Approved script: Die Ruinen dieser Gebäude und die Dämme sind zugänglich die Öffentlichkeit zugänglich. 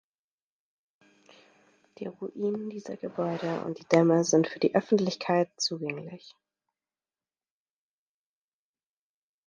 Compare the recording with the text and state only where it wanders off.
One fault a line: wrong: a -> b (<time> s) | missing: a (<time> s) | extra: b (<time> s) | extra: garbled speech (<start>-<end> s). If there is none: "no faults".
wrong: zugänglich -> für (4.5 s)